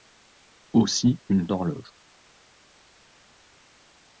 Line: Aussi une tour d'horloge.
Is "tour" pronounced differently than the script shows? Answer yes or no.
yes